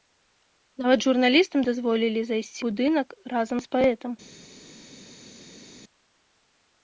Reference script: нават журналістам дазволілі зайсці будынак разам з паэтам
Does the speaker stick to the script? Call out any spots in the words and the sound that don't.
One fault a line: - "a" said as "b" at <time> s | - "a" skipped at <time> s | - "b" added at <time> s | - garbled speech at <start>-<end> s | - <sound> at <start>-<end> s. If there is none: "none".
none